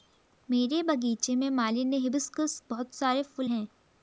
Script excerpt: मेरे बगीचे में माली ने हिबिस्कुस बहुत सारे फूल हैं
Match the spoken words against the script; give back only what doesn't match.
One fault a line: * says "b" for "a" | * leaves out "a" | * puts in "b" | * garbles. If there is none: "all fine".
all fine